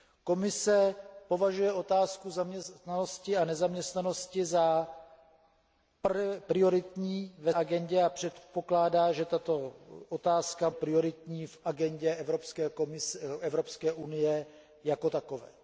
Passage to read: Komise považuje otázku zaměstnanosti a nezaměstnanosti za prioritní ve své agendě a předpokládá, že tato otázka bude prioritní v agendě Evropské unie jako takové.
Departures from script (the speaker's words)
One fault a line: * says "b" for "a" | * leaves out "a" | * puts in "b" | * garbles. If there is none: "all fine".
* leaves out "své"
* leaves out "bude"